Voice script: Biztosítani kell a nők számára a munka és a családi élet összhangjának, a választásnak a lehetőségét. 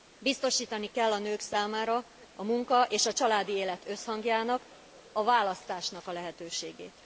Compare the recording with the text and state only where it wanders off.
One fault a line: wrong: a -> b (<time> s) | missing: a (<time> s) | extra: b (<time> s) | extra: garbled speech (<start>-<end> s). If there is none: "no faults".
no faults